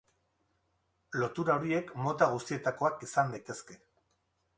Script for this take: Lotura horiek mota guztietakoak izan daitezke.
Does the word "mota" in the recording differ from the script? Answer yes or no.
no